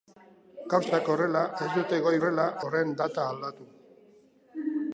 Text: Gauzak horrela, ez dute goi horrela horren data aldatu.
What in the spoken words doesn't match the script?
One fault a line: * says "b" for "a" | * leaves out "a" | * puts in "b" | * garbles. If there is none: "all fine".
all fine